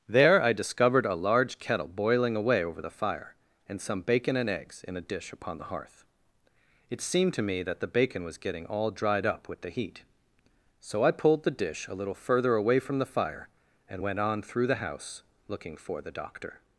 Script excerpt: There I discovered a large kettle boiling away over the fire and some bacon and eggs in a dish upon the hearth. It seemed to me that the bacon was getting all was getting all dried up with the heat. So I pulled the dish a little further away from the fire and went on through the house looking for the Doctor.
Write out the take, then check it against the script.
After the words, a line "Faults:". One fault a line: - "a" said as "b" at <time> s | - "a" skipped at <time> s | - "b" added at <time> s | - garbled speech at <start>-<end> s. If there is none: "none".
There I discovered a large kettle boiling away over the fire and some bacon and eggs in a dish upon the hearth. It seemed to me that the bacon was getting all dried up with the heat. So I pulled the dish a little further away from the fire and went on through the house looking for the Doctor.
Faults:
- "was getting all" skipped at 8.9 s